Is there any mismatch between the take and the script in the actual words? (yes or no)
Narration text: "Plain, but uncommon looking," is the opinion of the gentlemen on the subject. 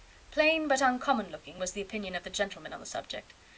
yes